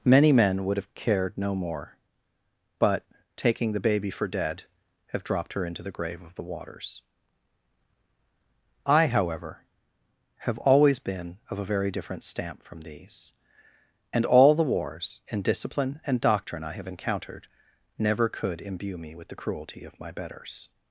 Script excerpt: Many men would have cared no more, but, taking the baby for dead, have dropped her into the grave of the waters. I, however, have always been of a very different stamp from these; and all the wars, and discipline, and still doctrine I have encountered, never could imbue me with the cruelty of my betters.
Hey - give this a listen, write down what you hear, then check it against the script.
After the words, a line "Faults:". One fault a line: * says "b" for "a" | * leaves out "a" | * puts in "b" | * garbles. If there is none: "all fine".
Many men would have cared no more, but, taking the baby for dead, have dropped her into the grave of the waters. I, however, have always been of a very different stamp from these; and all the wars, and discipline, and doctrine I have encountered, never could imbue me with the cruelty of my betters.
Faults:
* leaves out "still"